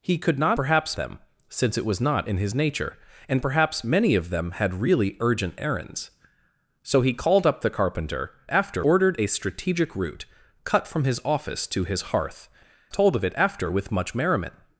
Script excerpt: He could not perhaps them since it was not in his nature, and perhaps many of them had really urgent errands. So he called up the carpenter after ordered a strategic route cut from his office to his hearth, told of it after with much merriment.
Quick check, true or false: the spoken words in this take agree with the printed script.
true